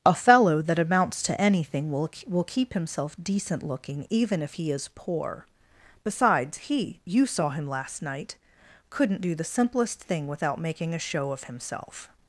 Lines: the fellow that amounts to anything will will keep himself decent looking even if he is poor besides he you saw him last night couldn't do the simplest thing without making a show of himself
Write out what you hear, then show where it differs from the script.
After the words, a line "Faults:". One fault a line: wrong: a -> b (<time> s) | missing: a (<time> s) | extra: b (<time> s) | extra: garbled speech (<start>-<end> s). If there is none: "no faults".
a fellow that amounts to anything will will keep himself decent looking even if he is poor besides he you saw him last night couldn't do the simplest thing without making a show of himself
Faults:
wrong: the -> a (0.0 s)